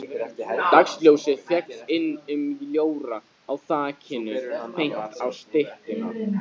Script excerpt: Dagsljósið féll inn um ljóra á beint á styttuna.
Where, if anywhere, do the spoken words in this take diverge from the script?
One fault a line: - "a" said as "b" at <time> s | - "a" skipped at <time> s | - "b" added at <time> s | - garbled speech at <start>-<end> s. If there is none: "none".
- "þakinu" added at 3.7 s